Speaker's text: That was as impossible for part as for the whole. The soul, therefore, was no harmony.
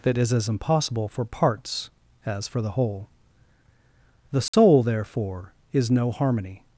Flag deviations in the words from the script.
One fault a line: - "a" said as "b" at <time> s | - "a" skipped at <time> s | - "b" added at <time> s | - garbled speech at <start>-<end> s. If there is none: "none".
- "was" said as "is" at 0.2 s
- "part" said as "parts" at 1.2 s
- "was" said as "is" at 5.7 s